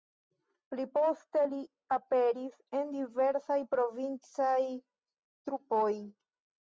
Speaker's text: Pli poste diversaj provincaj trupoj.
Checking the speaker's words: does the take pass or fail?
fail